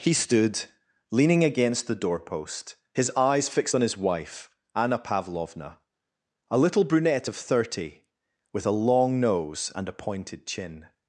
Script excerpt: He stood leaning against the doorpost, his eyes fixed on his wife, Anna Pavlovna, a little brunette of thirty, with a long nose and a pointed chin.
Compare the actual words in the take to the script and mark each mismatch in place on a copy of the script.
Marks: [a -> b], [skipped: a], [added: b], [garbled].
He stood leaning against the doorpost, his eyes fixed on his wife, Anna Pavlovna, a little brunette of thirty, with a long nose and a pointed chin.